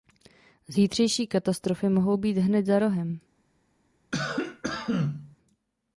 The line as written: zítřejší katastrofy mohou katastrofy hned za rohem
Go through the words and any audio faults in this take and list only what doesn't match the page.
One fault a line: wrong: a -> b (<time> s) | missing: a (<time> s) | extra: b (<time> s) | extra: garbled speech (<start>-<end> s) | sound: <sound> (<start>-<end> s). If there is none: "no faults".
wrong: katastrofy -> být (2.2 s)
sound: cough (4.1-5.4 s)